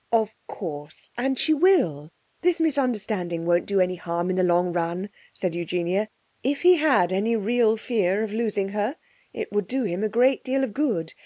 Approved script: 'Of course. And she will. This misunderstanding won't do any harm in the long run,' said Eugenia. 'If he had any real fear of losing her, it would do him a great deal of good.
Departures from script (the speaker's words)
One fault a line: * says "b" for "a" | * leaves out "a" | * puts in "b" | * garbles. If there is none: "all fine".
all fine